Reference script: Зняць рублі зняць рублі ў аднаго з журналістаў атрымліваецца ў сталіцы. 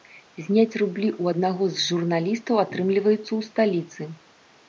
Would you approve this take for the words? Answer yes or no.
no